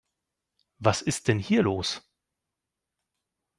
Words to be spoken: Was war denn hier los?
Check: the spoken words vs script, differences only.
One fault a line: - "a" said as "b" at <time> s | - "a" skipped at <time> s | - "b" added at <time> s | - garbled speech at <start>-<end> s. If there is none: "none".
- "war" said as "ist" at 1.0 s